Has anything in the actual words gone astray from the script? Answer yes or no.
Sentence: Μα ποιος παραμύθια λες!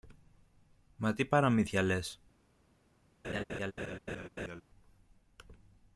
yes